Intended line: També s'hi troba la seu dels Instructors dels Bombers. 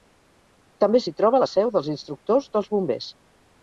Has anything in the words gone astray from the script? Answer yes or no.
no